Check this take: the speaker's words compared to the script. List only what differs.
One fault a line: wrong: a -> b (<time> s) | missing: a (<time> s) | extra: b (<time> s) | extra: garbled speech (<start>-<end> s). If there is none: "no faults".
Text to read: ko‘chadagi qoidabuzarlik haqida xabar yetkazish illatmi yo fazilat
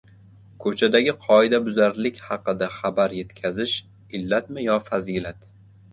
no faults